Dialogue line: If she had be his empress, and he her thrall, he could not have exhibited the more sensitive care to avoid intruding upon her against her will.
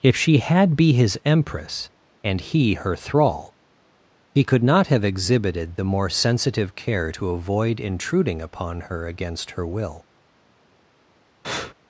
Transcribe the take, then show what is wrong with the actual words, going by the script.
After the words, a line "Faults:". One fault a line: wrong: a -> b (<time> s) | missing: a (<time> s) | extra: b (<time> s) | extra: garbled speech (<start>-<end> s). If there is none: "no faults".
If she had be his empress, and he her thrall, he could not have exhibited the more sensitive care to avoid intruding upon her against her will.
Faults:
no faults